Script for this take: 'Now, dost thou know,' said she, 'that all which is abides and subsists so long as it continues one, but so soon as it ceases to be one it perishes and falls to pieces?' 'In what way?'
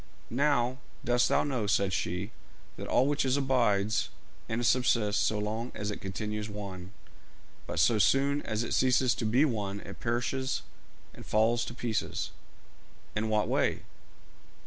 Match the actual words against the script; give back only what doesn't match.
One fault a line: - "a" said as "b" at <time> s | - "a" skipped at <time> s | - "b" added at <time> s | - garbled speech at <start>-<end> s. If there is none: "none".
none